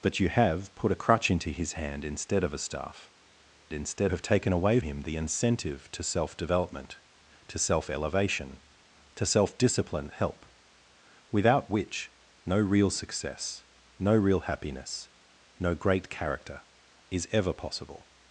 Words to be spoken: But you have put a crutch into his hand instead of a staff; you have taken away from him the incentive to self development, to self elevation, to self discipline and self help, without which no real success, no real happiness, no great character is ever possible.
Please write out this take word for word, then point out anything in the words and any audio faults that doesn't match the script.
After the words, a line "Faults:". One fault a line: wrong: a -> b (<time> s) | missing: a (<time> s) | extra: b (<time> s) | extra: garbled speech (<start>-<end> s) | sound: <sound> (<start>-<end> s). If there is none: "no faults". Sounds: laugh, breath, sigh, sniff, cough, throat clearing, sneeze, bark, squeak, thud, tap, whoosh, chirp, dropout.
But you have put a crutch into his hand instead of a staff; instead have taken away him the incentive to self development, to self elevation, to self discipline help, without which no real success, no real happiness, no great character is ever possible.
Faults:
wrong: you -> instead (3.7 s)
missing: from (4.8 s)
missing: and self (10.1 s)